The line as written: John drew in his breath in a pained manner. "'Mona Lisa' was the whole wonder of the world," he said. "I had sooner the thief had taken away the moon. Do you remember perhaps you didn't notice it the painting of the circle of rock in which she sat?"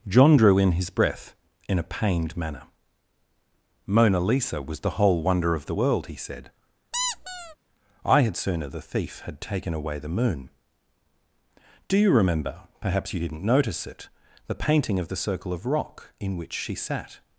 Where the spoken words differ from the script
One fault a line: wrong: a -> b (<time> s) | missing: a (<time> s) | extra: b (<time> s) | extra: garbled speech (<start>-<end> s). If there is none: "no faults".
no faults